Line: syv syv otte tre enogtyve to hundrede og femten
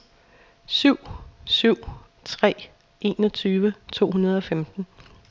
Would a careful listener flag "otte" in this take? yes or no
yes